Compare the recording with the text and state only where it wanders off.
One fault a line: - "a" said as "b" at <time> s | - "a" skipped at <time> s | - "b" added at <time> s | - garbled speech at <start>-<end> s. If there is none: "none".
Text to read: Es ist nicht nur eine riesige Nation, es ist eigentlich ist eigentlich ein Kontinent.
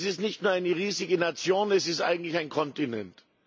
- "ist eigentlich" skipped at 2.4 s